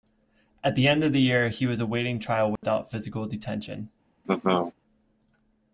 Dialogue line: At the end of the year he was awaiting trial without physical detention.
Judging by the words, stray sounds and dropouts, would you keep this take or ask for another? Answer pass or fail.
fail